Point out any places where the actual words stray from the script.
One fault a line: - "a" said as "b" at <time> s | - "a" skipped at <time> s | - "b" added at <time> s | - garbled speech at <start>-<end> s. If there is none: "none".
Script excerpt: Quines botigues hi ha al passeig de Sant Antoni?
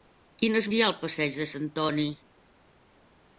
- "botigues" skipped at 0.7 s
- "Sant" skipped at 1.5 s